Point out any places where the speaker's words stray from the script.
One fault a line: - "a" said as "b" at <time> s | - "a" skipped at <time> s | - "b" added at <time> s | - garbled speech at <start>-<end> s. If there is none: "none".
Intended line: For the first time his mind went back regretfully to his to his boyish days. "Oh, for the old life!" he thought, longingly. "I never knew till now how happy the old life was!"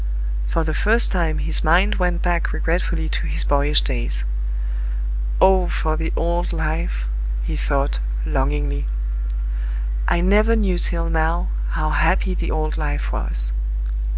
- "to his" skipped at 3.4 s